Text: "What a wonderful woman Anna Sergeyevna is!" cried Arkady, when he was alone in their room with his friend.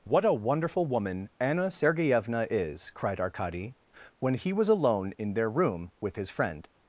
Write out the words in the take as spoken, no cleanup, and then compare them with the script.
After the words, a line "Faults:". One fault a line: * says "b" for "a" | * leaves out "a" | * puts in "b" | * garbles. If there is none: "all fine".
"What a wonderful woman Anna Sergeyevna is!" cried Arkady, when he was alone in their room with his friend.
Faults:
all fine